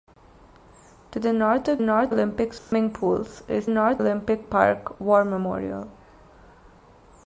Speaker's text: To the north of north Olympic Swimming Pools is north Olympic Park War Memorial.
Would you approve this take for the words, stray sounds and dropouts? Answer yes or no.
no